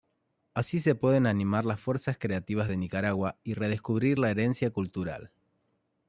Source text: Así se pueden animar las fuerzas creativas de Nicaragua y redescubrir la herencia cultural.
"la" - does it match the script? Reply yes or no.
yes